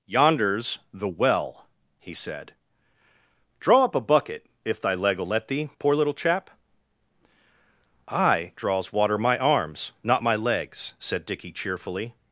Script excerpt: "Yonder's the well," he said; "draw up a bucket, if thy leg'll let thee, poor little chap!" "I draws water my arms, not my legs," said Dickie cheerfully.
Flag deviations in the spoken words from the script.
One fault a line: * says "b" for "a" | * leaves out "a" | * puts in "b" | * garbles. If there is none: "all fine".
all fine